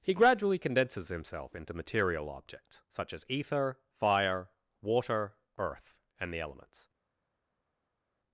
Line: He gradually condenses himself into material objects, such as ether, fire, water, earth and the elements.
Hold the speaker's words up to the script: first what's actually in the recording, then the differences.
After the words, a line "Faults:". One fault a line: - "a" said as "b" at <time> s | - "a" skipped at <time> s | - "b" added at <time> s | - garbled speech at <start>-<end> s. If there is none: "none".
He gradually condenses himself into material objects, such as ether, fire, water, earth and the elements.
Faults:
none